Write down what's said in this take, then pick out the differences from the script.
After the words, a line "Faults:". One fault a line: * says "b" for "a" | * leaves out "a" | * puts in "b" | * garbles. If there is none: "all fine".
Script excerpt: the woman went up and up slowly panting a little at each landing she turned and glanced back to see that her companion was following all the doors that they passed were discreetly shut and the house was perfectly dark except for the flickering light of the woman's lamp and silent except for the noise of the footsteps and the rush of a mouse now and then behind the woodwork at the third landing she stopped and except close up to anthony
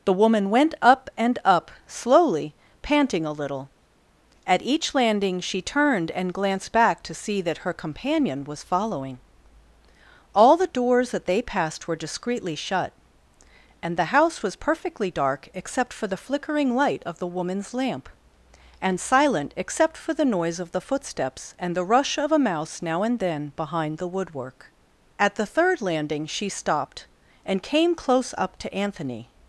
the woman went up and up slowly panting a little at each landing she turned and glanced back to see that her companion was following all the doors that they passed were discreetly shut and the house was perfectly dark except for the flickering light of the woman's lamp and silent except for the noise of the footsteps and the rush of a mouse now and then behind the woodwork at the third landing she stopped and came close up to anthony
Faults:
* says "came" for "except"